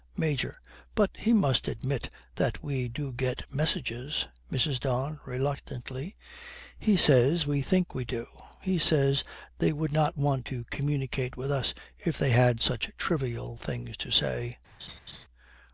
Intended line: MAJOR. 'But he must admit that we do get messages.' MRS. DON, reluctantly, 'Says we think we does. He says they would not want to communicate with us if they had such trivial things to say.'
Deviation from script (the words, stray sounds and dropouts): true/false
true